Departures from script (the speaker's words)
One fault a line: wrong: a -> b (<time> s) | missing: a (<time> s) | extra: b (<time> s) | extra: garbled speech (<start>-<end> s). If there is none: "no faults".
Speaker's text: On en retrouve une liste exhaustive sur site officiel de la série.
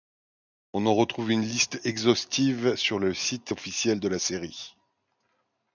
extra: le (3.0 s)